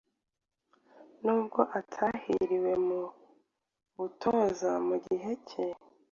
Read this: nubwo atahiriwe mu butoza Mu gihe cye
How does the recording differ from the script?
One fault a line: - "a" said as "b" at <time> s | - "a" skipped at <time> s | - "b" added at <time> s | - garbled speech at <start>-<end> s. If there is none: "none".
none